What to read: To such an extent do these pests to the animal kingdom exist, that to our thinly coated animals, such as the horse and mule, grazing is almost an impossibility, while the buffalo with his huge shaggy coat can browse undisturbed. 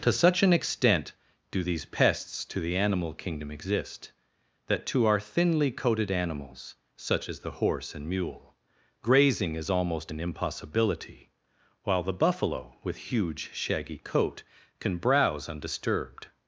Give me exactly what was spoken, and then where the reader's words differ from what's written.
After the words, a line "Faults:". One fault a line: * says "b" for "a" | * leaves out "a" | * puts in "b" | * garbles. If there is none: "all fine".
To such an extent do these pests to the animal kingdom exist, that to our thinly coated animals, such as the horse and mule, grazing is almost an impossibility, while the buffalo with huge shaggy coat can browse undisturbed.
Faults:
* leaves out "his"